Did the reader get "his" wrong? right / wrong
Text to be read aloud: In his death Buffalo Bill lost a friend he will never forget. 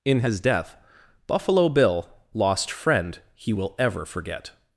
right